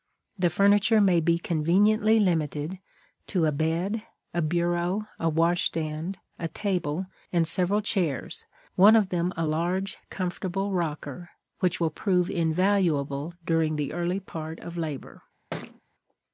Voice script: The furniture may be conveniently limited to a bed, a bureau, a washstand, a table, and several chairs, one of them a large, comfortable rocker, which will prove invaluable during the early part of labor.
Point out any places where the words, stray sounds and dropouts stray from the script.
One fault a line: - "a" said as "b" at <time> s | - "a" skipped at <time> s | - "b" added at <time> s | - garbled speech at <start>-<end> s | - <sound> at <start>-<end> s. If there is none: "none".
- thud at 15.5-15.8 s